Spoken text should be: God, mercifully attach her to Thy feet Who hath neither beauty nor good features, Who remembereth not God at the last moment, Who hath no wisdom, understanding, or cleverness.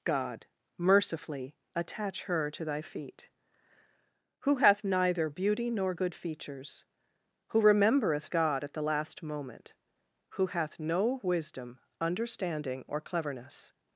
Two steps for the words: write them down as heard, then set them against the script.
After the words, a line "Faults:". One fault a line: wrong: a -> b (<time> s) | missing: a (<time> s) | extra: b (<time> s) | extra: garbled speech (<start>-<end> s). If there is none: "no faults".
God, mercifully attach her to Thy feet Who hath neither beauty nor good features, Who remembereth God at the last moment, Who hath no wisdom, understanding, or cleverness.
Faults:
missing: not (8.3 s)